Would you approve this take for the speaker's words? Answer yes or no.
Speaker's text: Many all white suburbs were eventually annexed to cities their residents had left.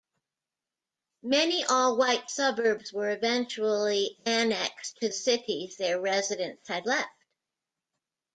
yes